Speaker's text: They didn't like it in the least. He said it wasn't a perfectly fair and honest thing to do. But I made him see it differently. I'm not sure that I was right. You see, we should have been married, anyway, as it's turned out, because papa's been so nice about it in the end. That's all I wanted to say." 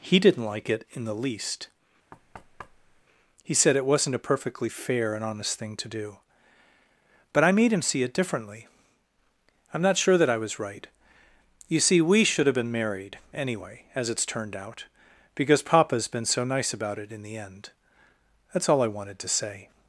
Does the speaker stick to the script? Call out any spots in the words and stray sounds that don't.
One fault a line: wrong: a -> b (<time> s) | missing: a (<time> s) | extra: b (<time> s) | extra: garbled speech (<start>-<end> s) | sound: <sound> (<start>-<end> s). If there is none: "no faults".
wrong: They -> He (0.0 s)
sound: thud (2.1-3.0 s)